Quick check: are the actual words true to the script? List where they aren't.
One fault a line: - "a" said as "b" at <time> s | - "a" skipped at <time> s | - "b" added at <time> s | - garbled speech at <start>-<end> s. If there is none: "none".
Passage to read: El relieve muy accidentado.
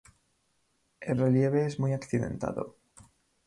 - "es" added at 1.7 s